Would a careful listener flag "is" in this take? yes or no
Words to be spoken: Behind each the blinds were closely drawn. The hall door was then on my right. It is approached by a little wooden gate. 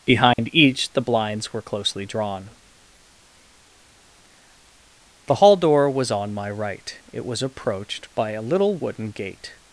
yes